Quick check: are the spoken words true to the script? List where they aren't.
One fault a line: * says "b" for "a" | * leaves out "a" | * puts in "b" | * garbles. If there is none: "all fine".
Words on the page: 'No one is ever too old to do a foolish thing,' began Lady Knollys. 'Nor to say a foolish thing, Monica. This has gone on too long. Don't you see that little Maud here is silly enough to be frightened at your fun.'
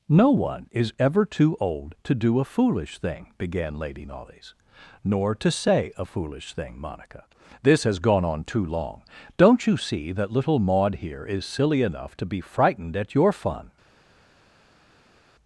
all fine